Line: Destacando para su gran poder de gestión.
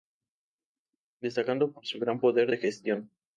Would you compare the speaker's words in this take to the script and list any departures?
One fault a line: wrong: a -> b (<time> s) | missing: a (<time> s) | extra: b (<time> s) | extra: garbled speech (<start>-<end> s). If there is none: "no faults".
wrong: para -> por (1.7 s)